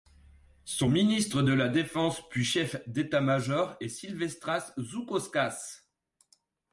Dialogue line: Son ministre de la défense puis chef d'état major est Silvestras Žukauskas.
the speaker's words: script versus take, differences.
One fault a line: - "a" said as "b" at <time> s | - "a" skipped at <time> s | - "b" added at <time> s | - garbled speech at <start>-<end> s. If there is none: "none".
none